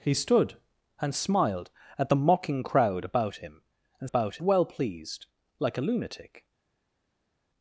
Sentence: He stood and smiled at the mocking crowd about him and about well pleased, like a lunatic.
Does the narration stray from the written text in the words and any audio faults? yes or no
no